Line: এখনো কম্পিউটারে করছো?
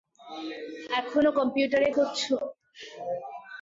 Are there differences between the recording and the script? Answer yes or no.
no